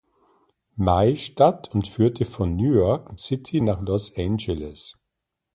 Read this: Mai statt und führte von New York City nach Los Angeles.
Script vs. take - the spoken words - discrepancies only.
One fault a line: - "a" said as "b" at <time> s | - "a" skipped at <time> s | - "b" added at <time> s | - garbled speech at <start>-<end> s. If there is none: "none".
none